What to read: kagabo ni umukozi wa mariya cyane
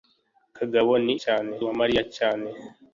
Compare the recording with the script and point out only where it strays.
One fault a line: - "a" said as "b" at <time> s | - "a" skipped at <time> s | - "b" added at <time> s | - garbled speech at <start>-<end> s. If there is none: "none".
- "umukozi" said as "cyane" at 1.2 s